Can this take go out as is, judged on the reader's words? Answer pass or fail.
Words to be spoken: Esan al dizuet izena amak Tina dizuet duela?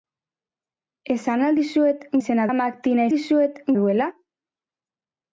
pass